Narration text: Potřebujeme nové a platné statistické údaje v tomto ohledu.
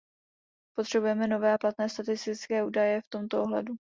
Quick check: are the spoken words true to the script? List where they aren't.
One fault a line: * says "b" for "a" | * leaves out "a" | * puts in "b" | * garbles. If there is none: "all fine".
all fine